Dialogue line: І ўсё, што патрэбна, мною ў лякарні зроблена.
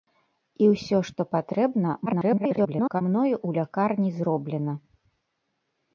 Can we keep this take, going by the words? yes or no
no